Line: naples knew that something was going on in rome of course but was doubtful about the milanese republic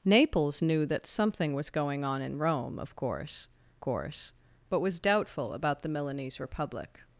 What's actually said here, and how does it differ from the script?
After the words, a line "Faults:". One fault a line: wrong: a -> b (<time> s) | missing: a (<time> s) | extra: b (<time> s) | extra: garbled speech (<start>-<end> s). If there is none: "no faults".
naples knew that something was going on in rome of course course but was doubtful about the milanese republic
Faults:
extra: course (3.8 s)